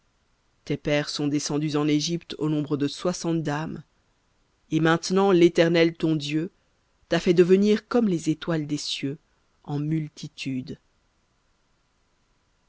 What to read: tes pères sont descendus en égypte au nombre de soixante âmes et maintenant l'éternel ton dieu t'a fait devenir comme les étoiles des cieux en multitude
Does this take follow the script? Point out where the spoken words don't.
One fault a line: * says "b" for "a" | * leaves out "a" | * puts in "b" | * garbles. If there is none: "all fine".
all fine